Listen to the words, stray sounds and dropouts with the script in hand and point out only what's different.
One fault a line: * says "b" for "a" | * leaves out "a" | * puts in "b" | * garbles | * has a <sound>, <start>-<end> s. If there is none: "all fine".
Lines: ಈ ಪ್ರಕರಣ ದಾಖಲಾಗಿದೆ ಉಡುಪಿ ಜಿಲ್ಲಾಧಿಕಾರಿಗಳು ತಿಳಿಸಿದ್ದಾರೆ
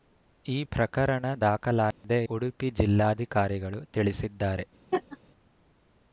* has a dropout, 1.9-2.0 s
* has a laugh, 4.9-5.2 s